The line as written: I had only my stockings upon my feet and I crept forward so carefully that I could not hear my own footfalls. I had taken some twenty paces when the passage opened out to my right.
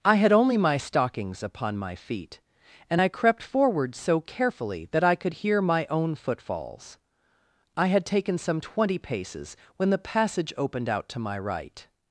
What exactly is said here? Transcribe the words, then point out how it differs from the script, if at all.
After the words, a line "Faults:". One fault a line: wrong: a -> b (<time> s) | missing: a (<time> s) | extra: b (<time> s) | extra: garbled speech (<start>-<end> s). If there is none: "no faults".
I had only my stockings upon my feet and I crept forward so carefully that I could hear my own footfalls. I had taken some twenty paces when the passage opened out to my right.
Faults:
missing: not (5.3 s)